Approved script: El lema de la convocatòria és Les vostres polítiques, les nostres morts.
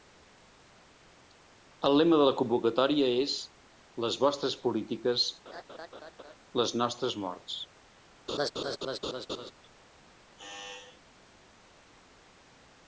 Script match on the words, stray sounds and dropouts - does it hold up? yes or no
no